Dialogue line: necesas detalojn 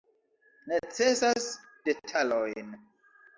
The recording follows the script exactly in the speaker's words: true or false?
true